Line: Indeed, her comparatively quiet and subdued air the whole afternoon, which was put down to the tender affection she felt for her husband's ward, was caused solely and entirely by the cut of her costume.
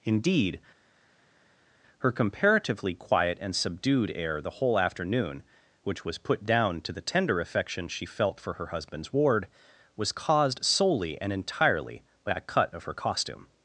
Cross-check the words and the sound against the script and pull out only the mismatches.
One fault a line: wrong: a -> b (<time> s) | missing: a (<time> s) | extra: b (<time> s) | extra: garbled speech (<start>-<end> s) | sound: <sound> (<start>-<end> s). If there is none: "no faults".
wrong: the -> a (12.3 s)